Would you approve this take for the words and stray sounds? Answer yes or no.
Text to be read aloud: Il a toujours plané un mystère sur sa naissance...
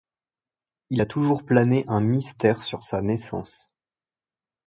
yes